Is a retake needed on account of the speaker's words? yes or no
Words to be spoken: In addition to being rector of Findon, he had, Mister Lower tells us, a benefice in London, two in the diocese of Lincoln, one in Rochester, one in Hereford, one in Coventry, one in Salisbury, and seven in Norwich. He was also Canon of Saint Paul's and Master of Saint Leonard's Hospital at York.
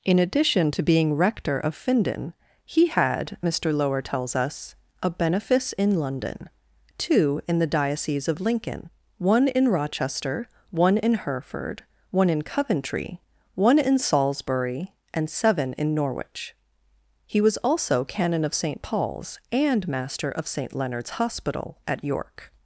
no